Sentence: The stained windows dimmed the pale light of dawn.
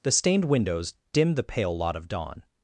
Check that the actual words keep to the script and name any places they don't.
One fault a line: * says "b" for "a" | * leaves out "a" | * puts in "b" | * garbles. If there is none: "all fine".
* says "lot" for "light"